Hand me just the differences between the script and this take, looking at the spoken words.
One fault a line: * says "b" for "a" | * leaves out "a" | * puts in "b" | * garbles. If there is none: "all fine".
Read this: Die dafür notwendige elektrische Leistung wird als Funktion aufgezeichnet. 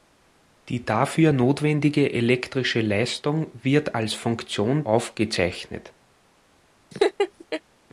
all fine